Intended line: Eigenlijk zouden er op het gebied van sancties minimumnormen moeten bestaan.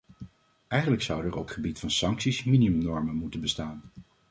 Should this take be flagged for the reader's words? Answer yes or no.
yes